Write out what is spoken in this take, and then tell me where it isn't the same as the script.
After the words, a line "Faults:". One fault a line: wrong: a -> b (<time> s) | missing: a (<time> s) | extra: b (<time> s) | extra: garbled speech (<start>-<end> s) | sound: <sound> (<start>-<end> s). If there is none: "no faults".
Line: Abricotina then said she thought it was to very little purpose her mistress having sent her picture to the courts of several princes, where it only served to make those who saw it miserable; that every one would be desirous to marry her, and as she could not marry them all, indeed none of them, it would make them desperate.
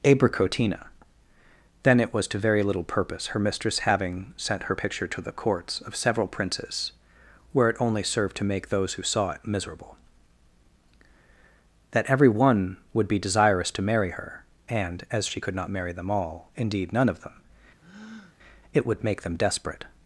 Abricotina then it was to very little purpose her mistress having sent her picture to the courts of several princes, where it only served to make those who saw it miserable; that every one would be desirous to marry her, and as she could not marry them all, indeed none of them, it would make them desperate.
Faults:
missing: said she thought (2.0 s)
sound: breath (17.8-18.4 s)